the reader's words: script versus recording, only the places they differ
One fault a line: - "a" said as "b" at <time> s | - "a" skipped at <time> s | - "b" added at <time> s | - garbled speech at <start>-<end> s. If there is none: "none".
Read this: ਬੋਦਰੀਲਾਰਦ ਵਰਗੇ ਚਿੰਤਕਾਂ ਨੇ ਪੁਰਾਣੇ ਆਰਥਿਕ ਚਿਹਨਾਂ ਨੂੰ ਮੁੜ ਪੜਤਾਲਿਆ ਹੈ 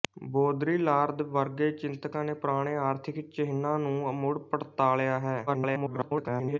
- garbled speech at 5.5-6.6 s